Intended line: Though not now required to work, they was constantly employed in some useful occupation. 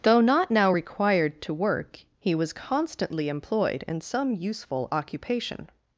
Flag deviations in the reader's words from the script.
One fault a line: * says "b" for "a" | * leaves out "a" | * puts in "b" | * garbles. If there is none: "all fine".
* says "he" for "they"